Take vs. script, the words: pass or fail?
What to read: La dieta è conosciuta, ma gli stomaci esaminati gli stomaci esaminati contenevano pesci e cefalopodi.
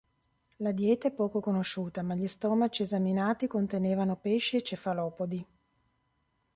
fail